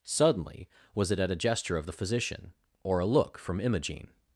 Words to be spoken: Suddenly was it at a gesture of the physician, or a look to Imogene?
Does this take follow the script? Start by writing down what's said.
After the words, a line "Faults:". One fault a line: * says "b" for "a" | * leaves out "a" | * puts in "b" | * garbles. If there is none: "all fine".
Suddenly was it at a gesture of the physician, or a look from Imogene?
Faults:
* says "from" for "to"